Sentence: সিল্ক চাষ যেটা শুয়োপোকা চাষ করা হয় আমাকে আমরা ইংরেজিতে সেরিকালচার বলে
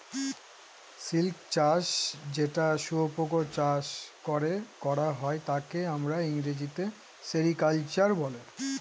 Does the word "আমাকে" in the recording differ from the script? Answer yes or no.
yes